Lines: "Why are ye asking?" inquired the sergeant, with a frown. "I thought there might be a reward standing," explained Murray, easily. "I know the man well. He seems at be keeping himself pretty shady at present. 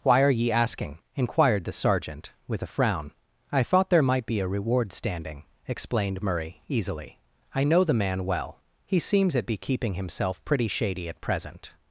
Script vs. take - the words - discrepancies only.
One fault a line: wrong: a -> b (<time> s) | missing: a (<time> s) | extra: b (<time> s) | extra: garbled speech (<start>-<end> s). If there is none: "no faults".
no faults